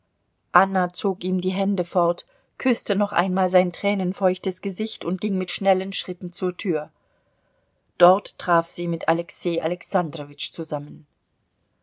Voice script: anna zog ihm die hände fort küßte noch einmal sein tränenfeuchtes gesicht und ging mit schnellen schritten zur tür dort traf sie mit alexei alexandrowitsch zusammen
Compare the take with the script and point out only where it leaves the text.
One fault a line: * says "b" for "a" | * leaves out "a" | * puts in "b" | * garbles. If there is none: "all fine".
all fine